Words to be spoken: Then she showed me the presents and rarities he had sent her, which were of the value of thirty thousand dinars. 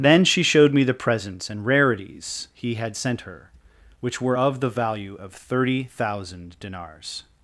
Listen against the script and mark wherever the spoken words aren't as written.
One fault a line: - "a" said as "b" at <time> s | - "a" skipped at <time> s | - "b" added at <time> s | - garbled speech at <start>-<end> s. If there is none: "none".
none